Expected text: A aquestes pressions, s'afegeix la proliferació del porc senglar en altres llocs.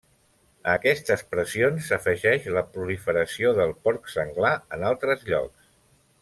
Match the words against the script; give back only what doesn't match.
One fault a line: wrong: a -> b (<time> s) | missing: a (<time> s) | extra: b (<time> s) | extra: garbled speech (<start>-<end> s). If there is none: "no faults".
no faults